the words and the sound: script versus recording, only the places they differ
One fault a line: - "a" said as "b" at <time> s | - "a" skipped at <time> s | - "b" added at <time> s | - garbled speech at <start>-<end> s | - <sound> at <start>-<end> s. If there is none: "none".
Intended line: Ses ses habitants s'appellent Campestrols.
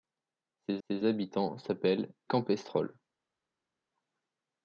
none